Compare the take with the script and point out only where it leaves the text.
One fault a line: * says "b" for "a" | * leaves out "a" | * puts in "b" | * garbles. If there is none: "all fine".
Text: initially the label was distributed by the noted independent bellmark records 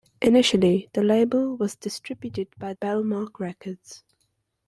* leaves out "the noted independent"